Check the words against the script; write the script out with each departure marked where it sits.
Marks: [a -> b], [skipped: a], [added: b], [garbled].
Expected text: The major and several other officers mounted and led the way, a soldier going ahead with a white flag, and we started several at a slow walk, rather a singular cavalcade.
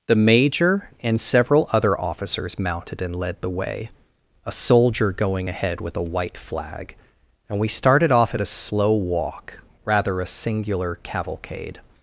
The major and several other officers mounted and led the way, a soldier going ahead with a white flag, and we started [several -> off] at a slow walk, rather a singular cavalcade.